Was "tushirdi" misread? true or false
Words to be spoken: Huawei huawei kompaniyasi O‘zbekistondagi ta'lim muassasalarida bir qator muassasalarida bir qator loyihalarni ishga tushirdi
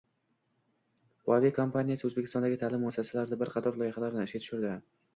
false